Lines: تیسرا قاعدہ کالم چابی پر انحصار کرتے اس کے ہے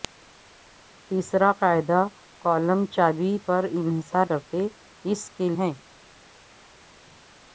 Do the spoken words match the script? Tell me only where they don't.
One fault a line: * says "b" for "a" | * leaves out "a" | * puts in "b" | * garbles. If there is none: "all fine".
all fine